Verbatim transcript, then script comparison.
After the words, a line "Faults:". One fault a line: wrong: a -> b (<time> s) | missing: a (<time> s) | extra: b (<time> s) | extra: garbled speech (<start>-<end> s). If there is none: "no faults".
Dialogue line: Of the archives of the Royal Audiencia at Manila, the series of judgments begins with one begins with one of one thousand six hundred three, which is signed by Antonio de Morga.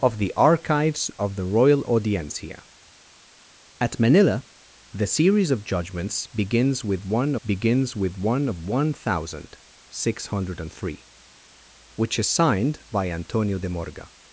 Of the archives of the Royal Audiencia at Manila, the series of judgments begins with one begins with one of one thousand six hundred three, which is signed by Antonio de Morga.
Faults:
no faults